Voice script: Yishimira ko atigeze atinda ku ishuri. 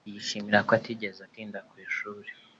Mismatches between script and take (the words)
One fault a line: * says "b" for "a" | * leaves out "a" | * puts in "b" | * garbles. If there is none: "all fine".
all fine